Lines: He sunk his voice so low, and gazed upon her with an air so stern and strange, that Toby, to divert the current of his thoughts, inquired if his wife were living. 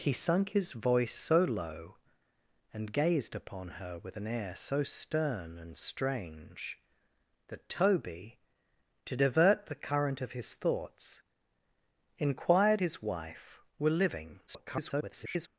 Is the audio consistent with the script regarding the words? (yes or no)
no